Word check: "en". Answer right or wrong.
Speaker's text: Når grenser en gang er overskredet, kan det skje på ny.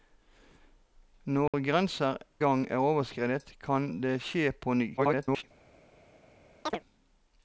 wrong